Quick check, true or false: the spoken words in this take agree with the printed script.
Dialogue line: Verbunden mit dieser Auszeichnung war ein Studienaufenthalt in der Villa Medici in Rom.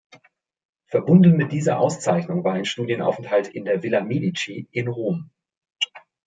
true